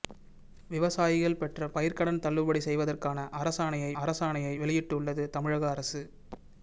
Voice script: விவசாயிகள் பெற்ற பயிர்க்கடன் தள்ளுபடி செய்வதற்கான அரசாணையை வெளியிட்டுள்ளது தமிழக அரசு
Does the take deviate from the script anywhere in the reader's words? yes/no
yes